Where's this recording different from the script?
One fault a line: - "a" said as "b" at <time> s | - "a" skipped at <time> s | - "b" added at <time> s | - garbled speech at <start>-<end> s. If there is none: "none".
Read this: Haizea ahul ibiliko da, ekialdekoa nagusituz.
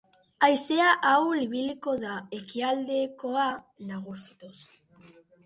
none